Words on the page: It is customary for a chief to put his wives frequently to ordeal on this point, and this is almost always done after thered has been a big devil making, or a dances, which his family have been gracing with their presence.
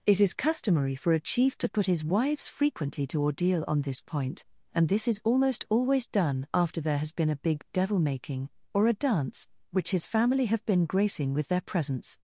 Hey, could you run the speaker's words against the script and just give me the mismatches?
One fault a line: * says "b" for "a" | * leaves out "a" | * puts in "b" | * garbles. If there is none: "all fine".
* says "there" for "thered"
* says "dance" for "dances"